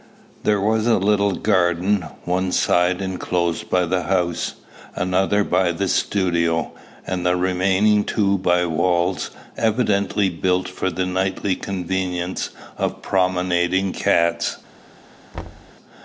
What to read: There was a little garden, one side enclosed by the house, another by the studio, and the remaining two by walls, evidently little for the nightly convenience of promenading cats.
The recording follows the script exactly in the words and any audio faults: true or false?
false